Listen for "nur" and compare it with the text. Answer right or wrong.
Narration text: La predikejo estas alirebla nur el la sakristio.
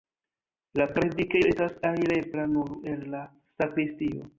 right